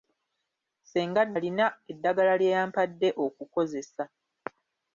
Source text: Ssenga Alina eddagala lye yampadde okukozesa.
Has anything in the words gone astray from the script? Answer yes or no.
no